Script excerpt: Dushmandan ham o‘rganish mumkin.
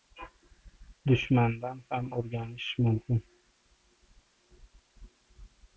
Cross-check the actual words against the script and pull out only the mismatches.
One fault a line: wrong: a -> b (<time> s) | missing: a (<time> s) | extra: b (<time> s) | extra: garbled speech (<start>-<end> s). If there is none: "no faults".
no faults